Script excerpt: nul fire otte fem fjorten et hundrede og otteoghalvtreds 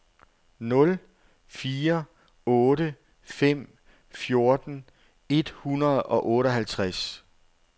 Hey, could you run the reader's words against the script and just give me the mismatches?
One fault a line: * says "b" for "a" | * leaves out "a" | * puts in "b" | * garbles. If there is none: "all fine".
all fine